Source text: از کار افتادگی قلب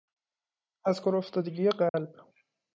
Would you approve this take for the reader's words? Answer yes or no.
yes